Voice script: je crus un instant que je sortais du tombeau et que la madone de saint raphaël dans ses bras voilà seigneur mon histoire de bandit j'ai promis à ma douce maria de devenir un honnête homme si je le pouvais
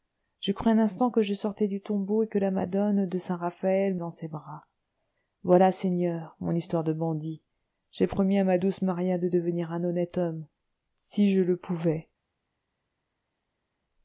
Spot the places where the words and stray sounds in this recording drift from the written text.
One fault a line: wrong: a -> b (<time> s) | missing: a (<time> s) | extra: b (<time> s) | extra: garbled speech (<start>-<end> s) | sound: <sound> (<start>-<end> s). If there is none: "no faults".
no faults